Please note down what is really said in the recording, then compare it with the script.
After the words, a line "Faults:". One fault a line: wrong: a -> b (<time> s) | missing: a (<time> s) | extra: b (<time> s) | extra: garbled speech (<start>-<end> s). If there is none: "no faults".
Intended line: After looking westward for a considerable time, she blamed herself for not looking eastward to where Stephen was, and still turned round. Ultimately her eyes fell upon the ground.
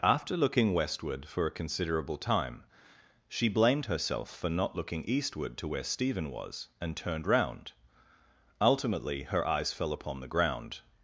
After looking westward for a considerable time, she blamed herself for not looking eastward to where Stephen was, and turned round. Ultimately her eyes fell upon the ground.
Faults:
missing: still (7.0 s)